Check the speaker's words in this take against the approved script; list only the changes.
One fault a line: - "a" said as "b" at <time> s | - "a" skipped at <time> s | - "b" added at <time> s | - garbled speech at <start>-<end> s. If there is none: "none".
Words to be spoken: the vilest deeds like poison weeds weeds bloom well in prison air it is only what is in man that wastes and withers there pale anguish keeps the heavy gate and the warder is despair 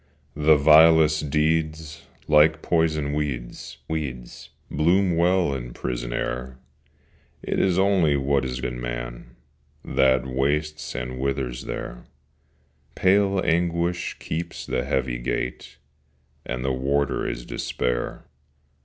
none